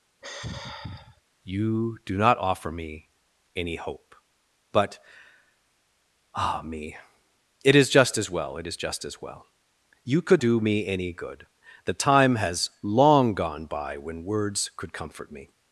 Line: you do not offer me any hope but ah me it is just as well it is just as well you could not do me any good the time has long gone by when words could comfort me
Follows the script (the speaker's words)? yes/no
no